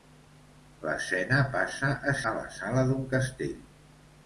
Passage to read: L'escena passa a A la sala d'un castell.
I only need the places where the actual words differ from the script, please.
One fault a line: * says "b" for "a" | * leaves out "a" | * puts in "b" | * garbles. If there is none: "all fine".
all fine